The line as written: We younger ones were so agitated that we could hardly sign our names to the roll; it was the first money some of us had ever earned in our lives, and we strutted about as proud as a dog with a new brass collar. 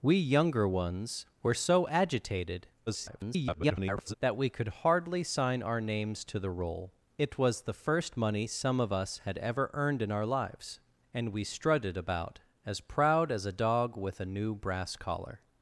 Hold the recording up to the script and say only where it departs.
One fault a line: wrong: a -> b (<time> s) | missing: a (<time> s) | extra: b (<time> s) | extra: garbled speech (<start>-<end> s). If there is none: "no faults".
extra: garbled speech (2.9-4.1 s)